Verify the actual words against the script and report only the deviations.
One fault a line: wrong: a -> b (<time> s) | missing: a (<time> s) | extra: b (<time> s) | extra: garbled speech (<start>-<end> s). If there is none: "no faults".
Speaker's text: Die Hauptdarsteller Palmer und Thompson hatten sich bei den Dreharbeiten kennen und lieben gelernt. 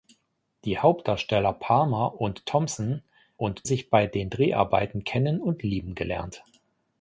wrong: hatten -> und (3.4 s)